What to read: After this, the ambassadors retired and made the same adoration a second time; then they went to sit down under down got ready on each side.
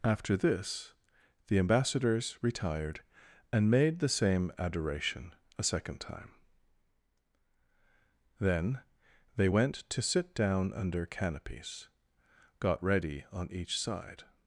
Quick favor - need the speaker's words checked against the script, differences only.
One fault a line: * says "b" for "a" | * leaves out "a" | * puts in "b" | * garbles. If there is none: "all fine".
* says "canopies" for "down"